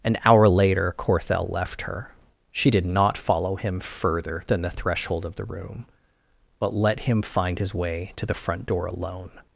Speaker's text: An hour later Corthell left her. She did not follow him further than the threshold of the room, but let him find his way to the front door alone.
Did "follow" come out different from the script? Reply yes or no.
no